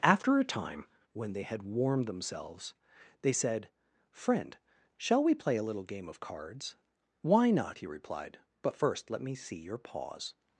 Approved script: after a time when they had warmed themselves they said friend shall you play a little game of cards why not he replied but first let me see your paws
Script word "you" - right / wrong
wrong